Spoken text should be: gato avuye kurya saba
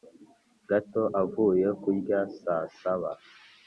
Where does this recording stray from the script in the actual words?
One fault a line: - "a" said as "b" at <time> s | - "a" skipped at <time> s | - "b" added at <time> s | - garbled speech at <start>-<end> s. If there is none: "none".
- "saa" added at 2.4 s